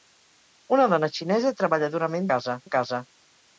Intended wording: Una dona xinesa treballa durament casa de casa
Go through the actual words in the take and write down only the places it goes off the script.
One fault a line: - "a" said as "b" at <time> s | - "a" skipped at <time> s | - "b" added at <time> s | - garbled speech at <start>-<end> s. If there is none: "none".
none